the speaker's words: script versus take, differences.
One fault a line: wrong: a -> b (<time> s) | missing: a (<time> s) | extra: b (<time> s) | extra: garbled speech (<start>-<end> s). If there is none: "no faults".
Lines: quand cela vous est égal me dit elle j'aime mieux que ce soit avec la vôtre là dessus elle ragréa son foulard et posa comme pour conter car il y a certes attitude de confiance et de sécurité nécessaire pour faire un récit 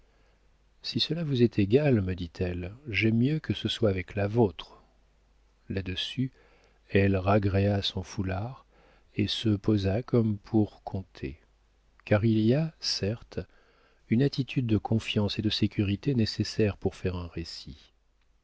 wrong: quand -> si (0.8 s)
extra: se (9.3 s)
extra: une (14.1 s)